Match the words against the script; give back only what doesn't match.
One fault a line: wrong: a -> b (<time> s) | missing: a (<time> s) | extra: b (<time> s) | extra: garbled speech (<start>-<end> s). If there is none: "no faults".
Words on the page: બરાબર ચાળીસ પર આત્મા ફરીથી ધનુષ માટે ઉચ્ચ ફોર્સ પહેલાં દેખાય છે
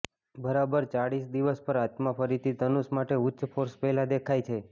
extra: દિવસ (1.4 s)